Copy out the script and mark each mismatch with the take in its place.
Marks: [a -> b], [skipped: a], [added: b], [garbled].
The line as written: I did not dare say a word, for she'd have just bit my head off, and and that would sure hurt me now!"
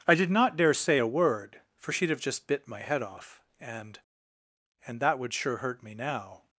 I did not dare say a word, for she'd have just bit my head off, and and that would sure hurt me now!"